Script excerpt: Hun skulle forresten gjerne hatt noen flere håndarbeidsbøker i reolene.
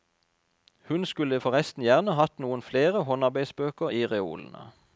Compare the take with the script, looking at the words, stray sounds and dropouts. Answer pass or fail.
pass